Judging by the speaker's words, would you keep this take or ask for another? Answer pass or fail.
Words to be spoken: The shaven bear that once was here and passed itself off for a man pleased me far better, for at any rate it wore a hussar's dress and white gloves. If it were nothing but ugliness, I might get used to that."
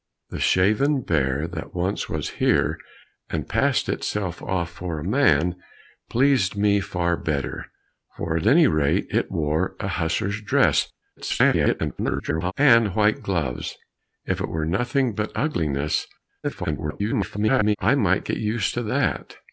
fail